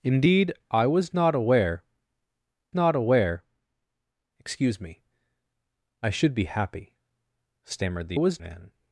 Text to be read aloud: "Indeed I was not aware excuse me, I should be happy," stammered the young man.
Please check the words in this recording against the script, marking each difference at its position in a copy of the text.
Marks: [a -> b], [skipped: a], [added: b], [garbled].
"Indeed I was not aware [added: not aware] excuse me, I should be happy," stammered the [young -> was] man.